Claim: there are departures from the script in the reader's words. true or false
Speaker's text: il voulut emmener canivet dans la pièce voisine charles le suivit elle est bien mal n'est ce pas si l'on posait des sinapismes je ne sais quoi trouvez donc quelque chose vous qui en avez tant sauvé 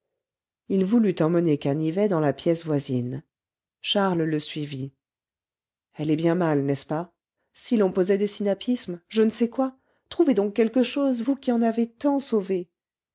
false